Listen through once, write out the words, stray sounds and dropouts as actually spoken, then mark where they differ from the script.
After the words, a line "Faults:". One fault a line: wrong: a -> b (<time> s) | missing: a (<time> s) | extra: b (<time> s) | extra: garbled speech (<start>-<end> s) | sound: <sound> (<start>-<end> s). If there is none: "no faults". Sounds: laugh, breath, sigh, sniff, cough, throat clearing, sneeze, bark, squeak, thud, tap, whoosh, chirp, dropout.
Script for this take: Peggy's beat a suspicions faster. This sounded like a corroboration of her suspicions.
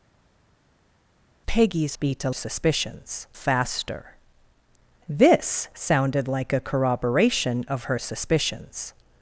Peggy's beat a suspicions faster. This sounded like a corroboration of her suspicions.
Faults:
no faults